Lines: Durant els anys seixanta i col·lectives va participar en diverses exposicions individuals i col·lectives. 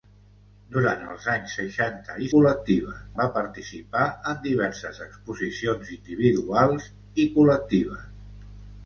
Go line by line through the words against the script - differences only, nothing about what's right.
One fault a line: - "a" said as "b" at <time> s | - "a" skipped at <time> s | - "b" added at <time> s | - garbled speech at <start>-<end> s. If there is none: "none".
none